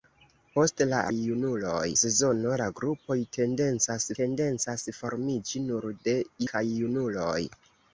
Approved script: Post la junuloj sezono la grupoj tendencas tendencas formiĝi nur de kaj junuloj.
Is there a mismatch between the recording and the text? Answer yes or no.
no